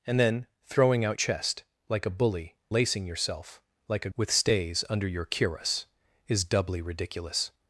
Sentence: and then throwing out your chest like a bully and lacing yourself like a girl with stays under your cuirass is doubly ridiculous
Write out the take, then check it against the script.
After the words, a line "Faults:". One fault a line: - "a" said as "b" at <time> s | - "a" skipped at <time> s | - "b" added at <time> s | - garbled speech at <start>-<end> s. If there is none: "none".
and then throwing out chest like a bully lacing yourself like a with stays under your cuirass is doubly ridiculous
Faults:
- "your" skipped at 1.2 s
- "and" skipped at 2.5 s
- "girl" skipped at 4.1 s